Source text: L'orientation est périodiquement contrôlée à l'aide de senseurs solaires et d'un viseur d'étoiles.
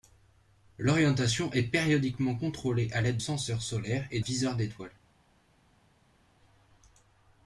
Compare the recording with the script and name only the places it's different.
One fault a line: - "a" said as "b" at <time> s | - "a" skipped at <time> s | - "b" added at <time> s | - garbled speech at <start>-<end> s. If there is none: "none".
- "de" skipped at 3.2 s
- "d'un" skipped at 4.2 s